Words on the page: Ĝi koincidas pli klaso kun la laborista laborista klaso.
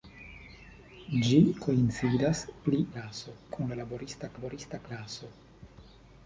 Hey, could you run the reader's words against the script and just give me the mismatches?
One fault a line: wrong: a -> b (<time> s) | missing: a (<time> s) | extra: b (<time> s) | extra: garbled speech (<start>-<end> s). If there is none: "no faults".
no faults